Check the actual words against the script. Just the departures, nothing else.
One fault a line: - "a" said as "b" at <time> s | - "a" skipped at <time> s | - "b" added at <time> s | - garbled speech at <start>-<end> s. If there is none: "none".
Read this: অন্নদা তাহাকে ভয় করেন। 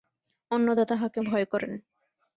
none